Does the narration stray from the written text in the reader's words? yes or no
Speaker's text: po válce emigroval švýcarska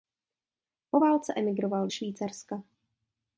no